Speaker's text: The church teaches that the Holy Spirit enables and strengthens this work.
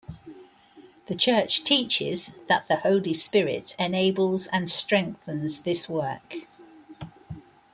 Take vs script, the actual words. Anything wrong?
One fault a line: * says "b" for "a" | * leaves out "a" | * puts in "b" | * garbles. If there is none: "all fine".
all fine